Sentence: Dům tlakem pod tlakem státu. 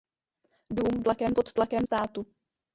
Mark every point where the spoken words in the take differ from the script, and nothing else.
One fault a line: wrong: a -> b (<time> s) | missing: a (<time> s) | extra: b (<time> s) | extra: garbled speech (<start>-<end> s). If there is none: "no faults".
no faults